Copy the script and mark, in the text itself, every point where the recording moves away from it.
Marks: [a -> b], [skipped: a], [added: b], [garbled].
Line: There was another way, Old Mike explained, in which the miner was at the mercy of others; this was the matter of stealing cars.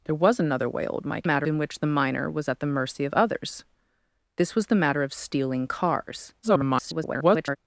There was another way, Old Mike [explained, -> matter] in which the miner was at the mercy of others; this was the matter of stealing cars. [garbled]